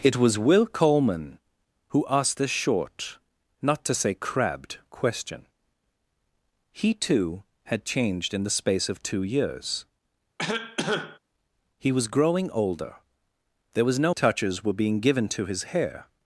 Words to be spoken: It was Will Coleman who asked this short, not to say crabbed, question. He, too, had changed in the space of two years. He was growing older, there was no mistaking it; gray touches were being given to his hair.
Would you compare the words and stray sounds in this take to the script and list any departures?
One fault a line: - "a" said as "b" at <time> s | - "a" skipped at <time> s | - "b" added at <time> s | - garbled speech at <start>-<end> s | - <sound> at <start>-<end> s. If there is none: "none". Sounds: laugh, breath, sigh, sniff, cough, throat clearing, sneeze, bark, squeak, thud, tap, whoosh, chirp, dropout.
- cough at 10.4-11.2 s
- "mistaking it gray" skipped at 14.1 s